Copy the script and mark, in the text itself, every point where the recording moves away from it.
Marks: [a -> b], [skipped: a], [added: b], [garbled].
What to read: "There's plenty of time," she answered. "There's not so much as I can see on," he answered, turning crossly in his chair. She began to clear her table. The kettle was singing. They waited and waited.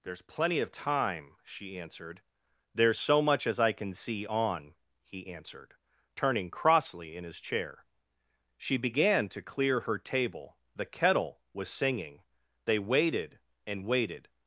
"There's plenty of time," she answered. "There's [skipped: not] so much as I can see on," he answered, turning crossly in his chair. She began to clear her table. The kettle was singing. They waited and waited.